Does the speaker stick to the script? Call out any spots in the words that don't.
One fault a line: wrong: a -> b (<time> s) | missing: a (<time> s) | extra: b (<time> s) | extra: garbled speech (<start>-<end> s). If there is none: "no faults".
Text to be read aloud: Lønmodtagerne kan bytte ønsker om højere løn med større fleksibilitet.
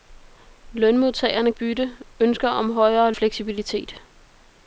missing: kan (1.5 s)
missing: løn med større (3.1 s)